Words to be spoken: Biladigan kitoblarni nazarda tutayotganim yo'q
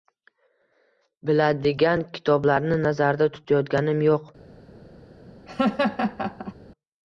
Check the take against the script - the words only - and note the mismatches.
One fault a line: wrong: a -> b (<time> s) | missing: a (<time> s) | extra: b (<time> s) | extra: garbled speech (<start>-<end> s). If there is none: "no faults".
no faults